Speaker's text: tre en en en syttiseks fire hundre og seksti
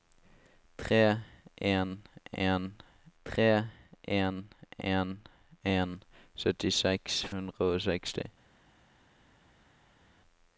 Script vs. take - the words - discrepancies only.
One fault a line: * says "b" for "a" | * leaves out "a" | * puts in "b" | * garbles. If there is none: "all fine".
* puts in "tre"
* puts in "en en"
* leaves out "fire"